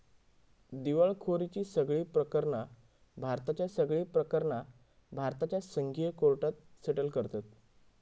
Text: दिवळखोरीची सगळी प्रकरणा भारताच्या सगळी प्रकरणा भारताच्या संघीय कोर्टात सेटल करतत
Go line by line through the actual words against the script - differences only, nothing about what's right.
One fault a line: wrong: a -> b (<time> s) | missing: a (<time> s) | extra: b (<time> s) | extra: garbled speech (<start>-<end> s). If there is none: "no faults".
no faults